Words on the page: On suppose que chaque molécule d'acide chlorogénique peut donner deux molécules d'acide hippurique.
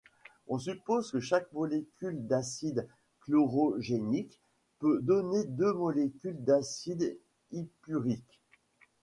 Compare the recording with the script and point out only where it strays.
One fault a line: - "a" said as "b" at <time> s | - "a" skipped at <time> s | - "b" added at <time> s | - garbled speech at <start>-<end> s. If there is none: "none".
none